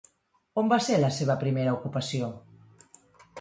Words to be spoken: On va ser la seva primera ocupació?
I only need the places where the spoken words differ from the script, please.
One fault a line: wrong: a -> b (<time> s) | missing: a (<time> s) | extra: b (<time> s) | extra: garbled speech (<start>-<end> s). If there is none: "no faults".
no faults